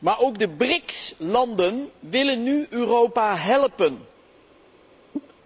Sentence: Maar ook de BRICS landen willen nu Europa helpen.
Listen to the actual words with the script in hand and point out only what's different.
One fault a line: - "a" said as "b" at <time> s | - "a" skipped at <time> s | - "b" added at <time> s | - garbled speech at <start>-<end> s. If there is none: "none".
none